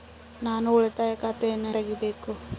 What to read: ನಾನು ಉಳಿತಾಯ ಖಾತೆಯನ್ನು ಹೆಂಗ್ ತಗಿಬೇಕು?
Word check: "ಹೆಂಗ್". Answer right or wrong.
wrong